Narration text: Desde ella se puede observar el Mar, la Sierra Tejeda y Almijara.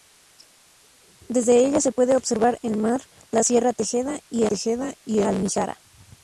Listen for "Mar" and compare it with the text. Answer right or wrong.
right